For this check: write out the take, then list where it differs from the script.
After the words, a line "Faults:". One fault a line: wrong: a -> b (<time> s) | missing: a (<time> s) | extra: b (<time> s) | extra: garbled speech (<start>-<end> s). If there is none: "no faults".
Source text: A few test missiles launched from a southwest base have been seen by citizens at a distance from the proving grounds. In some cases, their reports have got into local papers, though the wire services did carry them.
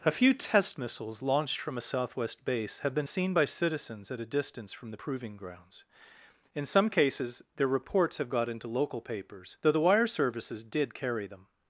A few test missiles launched from a southwest base have been seen by citizens at a distance from the proving grounds. In some cases, their reports have got into local papers, though the wire services did carry them.
Faults:
no faults